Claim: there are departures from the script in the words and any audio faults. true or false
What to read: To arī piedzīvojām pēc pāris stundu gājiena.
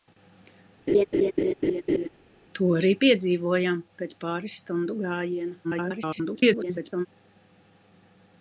true